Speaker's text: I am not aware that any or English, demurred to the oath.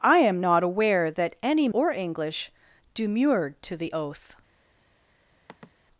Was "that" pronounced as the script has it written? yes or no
yes